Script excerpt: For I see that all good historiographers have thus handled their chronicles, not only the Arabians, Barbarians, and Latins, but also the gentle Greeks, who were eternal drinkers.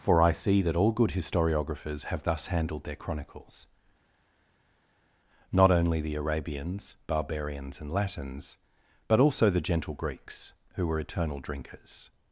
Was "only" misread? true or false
false